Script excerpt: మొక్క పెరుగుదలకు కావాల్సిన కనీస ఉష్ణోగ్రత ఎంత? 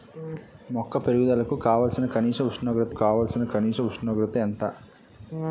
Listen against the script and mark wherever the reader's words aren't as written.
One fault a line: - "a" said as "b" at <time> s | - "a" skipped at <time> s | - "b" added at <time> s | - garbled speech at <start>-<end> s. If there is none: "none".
- "కావాల్సిన కనీస ఉష్ణోగ్రత" added at 2.9 s